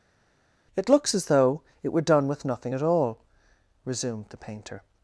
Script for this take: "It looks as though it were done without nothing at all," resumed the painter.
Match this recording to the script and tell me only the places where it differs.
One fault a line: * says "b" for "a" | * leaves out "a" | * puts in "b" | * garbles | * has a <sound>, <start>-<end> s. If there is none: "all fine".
* says "with" for "without"